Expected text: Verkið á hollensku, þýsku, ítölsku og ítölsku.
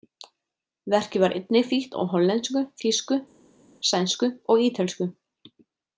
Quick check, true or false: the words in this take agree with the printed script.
false